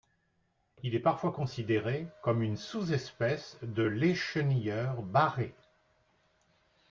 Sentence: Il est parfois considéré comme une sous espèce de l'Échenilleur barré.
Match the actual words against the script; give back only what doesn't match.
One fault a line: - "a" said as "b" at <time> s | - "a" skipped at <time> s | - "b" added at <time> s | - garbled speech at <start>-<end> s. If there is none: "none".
none